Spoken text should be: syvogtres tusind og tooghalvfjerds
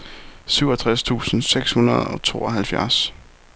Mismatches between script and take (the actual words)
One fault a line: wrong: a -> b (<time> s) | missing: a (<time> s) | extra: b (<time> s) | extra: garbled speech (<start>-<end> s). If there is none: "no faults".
extra: seks hundrede (1.4 s)